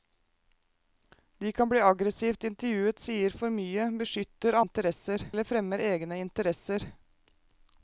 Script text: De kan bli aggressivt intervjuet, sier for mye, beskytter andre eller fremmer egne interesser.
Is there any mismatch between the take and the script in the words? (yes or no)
yes